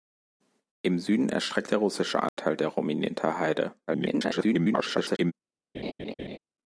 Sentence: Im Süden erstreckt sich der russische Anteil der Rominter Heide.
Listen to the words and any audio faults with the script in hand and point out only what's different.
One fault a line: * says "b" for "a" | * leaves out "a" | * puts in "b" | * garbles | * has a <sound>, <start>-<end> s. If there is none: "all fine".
* leaves out "sich"
* has a dropout, 2.3-2.4 s
* garbles
* has a laugh, 5.7-6.4 s